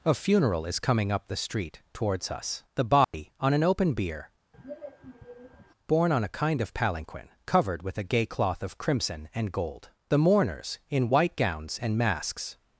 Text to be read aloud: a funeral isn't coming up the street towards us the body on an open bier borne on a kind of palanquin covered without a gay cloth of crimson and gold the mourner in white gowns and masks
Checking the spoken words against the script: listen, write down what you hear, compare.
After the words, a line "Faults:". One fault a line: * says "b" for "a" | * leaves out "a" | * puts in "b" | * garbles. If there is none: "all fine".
a funeral is coming up the street towards us the body on an open bier borne on a kind of palanquin covered with a gay cloth of crimson and gold the mourners in white gowns and masks
Faults:
* says "is" for "isn't"
* says "with" for "without"
* says "mourners" for "mourner"